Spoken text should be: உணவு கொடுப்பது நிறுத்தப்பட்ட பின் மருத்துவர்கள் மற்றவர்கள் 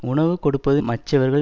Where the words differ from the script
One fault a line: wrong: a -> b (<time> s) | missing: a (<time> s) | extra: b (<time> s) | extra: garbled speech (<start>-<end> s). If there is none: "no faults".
missing: நிறுத்தப்பட்ட பின் மருத்துவர்கள் (0.8 s)